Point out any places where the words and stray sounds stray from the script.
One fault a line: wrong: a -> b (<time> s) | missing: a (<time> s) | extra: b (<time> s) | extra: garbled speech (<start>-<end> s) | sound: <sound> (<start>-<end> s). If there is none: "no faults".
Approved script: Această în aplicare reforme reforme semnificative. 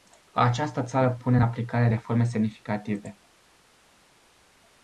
extra: țară pune (0.8 s)
missing: reforme (2.2 s)